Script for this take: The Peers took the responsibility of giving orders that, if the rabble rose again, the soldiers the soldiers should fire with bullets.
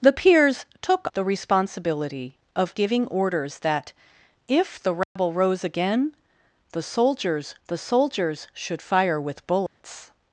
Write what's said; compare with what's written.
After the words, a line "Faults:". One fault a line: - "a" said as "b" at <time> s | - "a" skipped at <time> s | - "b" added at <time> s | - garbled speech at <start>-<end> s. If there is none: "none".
The Peers took the responsibility of giving orders that, if the rabble rose again, the soldiers the soldiers should fire with bullets.
Faults:
none